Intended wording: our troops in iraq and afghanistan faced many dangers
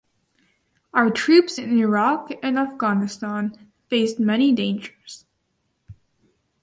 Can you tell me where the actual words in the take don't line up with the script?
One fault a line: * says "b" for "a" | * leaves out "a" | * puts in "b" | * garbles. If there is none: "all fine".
all fine